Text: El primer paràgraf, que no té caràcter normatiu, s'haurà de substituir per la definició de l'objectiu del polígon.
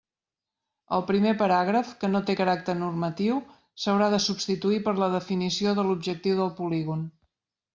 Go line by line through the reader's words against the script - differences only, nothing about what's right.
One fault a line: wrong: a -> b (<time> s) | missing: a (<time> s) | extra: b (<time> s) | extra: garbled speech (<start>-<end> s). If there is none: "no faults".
no faults